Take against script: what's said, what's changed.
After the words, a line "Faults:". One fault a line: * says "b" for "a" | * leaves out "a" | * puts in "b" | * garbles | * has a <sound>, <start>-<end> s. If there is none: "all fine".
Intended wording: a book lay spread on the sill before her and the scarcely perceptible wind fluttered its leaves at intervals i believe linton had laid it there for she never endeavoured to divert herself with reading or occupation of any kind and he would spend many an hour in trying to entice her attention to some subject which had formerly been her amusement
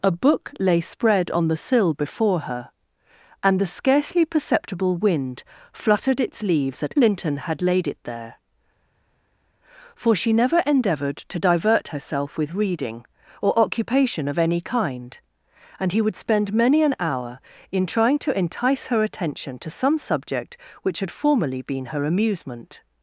a book lay spread on the sill before her and the scarcely perceptible wind fluttered its leaves at linton had laid it there for she never endeavoured to divert herself with reading or occupation of any kind and he would spend many an hour in trying to entice her attention to some subject which had formerly been her amusement
Faults:
* leaves out "intervals i believe"